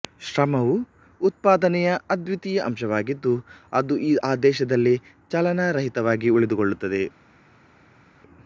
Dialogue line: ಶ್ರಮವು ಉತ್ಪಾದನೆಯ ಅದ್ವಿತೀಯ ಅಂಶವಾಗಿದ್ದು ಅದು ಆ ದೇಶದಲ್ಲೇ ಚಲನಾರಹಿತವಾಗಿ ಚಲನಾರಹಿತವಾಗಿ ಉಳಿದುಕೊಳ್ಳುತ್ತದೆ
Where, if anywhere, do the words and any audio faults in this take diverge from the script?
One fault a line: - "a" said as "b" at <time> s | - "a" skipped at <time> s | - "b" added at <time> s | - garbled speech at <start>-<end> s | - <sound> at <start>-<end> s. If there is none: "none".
- "ಚಲನಾರಹಿತವಾಗಿ" skipped at 6.3 s